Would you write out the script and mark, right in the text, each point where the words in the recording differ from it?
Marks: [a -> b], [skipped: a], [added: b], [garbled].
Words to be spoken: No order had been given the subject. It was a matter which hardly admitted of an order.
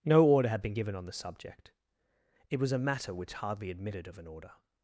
No order had been given [added: on] the subject. It was a matter which hardly admitted of an order.